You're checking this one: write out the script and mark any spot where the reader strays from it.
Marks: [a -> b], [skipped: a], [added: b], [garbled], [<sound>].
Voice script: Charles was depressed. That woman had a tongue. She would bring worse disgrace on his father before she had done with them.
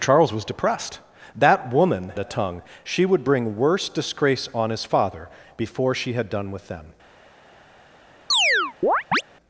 Charles was depressed. That woman [skipped: had] a tongue. She would bring worse disgrace on his father before she had done with them. [chirp]